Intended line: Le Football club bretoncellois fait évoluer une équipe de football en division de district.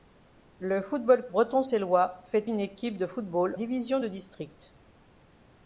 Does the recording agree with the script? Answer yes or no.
no